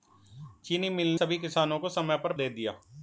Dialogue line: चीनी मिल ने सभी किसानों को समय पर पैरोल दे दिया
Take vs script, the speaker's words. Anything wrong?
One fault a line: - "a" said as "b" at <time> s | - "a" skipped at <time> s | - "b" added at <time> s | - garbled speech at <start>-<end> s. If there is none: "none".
- "ने" skipped at 1.1 s
- "पैरोल" skipped at 2.3 s